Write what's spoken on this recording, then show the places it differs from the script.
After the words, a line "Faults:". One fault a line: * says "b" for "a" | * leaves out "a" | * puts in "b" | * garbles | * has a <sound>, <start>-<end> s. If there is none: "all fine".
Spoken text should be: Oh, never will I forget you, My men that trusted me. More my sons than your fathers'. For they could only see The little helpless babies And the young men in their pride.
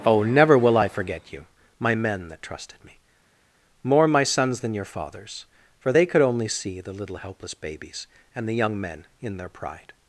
Oh, never will I forget you, My men that trusted me. More my sons than your fathers'. For they could only see The little helpless babies And the young men in their pride.
Faults:
all fine